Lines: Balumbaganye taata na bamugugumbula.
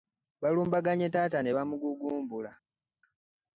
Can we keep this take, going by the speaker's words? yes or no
no